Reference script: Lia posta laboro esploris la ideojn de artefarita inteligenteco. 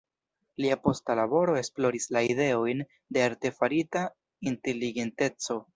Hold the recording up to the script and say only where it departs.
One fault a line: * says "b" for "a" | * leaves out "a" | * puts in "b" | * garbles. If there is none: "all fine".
all fine